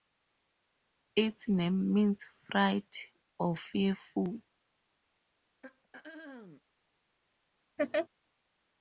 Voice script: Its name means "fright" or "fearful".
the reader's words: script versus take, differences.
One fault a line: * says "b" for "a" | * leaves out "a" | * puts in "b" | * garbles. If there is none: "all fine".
all fine